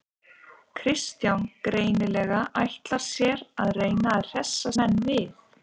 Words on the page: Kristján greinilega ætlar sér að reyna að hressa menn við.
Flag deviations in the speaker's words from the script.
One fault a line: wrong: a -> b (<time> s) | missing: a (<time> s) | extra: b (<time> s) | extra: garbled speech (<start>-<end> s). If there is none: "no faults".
no faults